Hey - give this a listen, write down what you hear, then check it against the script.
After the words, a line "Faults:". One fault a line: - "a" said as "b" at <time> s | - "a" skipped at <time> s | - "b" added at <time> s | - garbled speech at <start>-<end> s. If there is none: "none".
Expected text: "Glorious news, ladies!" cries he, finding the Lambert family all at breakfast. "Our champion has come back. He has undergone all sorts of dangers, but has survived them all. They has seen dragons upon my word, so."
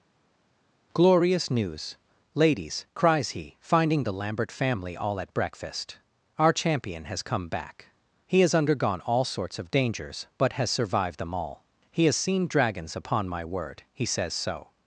"Glorious news, ladies!" cries he, finding the Lambert family all at breakfast. "Our champion has come back. He has undergone all sorts of dangers, but has survived them all. He has seen dragons upon my word, he says so."
Faults:
- "They" said as "He" at 11.9 s
- "he says" added at 13.9 s